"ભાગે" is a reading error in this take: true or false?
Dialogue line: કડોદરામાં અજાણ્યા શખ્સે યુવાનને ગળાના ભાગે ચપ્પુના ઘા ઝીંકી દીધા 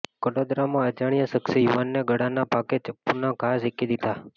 false